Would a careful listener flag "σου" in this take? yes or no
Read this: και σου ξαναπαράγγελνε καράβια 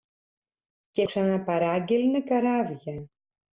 yes